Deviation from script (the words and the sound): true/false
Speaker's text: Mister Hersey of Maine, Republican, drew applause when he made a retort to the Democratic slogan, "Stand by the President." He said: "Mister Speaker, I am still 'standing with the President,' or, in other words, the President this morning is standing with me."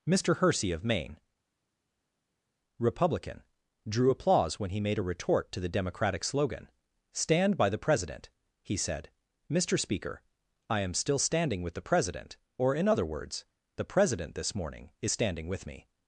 false